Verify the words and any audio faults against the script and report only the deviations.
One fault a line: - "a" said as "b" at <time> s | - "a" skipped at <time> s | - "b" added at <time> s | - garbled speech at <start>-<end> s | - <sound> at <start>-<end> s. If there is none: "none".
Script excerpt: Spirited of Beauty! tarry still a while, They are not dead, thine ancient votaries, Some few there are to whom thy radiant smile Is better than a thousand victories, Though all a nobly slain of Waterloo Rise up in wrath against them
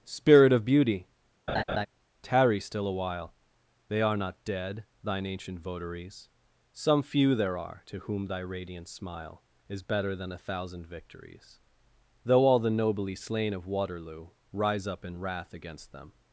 - "Spirited" said as "Spirit" at 0.1 s
- laugh at 1.5-1.9 s
- "a" said as "the" at 12.6 s